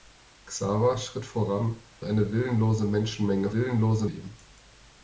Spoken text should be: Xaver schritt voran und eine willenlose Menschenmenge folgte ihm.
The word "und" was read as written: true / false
false